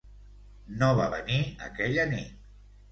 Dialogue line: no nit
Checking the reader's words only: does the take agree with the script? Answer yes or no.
no